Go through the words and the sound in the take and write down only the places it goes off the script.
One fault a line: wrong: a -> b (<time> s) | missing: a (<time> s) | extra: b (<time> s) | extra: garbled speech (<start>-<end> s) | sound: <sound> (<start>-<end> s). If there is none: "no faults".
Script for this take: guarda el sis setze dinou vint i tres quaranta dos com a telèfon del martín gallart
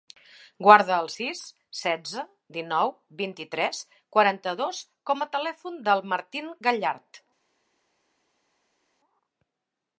no faults